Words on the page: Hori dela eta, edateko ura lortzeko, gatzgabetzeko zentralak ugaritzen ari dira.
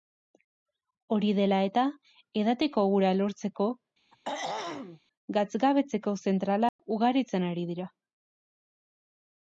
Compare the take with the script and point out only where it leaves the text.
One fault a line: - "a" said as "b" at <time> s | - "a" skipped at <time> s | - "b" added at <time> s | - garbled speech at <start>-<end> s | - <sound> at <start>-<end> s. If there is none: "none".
- throat clearing at 4.1-5.0 s
- dropout at 6.7-6.8 s